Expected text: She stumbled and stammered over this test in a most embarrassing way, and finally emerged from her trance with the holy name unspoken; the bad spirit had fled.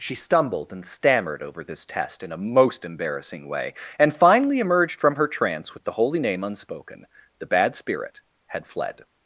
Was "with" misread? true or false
false